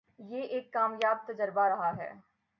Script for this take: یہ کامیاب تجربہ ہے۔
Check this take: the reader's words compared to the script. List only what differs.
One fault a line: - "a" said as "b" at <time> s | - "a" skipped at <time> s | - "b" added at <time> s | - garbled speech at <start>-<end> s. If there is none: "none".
- "ایک" added at 0.4 s
- "رہا" added at 1.7 s